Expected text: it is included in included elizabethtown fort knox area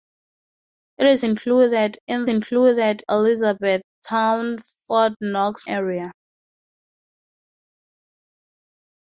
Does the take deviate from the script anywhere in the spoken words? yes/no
no